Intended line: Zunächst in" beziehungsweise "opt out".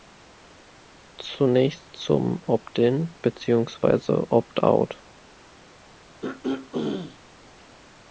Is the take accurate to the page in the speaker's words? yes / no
no